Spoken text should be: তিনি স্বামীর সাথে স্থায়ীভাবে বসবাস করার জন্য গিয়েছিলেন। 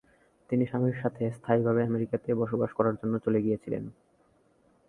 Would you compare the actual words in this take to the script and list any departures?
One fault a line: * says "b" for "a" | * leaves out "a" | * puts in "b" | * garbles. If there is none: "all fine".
* puts in "আমেরিকাতে"
* puts in "চলে"